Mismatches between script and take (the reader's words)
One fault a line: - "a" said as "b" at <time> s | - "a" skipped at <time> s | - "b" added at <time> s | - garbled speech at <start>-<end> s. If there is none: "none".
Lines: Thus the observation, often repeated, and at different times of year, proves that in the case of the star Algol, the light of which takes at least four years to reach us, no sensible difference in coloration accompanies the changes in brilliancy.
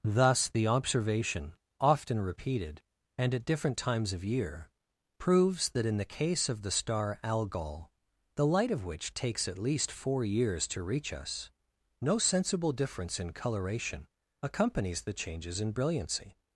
none